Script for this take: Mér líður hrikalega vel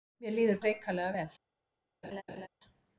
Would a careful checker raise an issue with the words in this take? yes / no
no